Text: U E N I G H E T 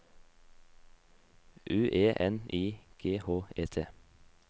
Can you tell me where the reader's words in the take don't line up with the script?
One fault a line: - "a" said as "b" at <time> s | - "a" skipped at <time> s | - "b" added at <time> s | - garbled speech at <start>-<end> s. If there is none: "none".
none